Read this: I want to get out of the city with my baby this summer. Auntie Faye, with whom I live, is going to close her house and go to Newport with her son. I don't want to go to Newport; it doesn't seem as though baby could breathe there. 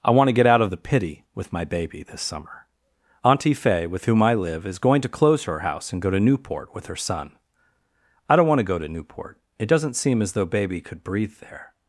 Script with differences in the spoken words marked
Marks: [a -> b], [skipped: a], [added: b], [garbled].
I want to get out of the [city -> pity] with my baby this summer. Auntie Faye, with whom I live, is going to close her house and go to Newport with her son. I don't want to go to Newport; it doesn't seem as though baby could breathe there.